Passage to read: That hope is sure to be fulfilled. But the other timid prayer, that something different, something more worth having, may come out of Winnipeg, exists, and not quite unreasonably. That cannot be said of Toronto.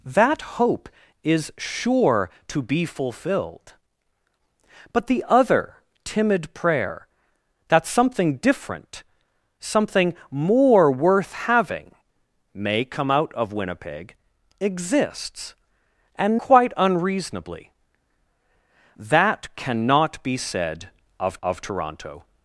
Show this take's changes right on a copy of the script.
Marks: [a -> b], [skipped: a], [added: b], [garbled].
That hope is sure to be fulfilled. But the other timid prayer, that something different, something more worth having, may come out of Winnipeg, exists, and [skipped: not] quite unreasonably. That cannot be said of [added: of] Toronto.